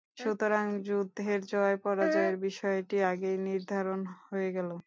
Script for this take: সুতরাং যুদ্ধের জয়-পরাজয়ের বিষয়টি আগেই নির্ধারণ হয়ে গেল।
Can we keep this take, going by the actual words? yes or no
yes